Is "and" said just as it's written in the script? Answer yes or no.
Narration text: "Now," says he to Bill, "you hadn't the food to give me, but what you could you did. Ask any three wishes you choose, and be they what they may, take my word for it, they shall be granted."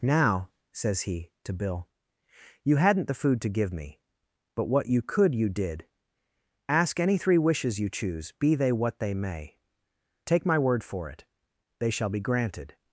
no